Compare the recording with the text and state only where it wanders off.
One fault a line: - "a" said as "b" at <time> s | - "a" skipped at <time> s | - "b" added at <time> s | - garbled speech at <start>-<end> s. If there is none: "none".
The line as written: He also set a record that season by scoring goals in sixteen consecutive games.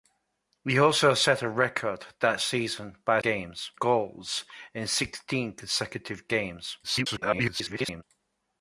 - "scoring" said as "games" at 3.2 s
- garbled speech at 6.8-8.0 s